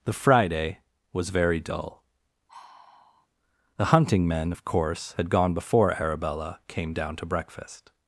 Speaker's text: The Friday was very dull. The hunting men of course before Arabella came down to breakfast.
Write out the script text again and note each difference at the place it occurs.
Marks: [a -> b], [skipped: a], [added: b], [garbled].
The Friday was very dull. The hunting men of course [added: had gone] before Arabella came down to breakfast.